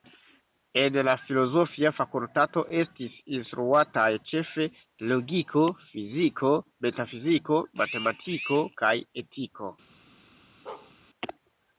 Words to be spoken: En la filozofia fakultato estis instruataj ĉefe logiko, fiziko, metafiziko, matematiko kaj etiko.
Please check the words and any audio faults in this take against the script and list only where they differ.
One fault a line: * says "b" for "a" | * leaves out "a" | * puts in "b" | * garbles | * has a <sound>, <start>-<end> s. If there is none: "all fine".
* has a bark, 10.7-10.9 s